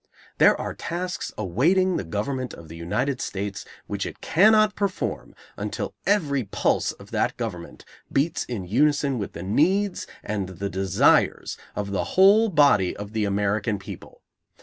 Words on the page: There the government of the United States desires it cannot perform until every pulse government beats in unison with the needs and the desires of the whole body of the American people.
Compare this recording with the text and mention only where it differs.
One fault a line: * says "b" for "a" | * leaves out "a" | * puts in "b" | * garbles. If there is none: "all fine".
* puts in "are tasks awaiting"
* says "which" for "desires"
* puts in "of that"